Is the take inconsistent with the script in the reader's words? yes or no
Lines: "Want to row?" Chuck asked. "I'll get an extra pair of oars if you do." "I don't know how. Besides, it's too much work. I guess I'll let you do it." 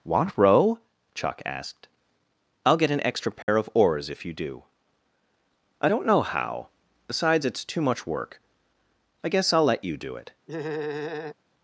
yes